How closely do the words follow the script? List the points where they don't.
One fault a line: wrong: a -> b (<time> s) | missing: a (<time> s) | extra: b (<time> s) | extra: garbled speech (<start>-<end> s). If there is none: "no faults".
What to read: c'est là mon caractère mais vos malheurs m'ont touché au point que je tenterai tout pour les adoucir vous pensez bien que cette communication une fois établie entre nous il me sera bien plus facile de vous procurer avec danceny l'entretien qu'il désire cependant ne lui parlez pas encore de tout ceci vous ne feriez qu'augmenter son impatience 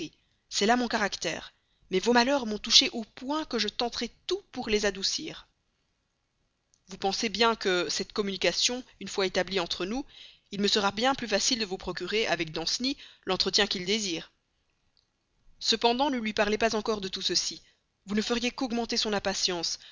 no faults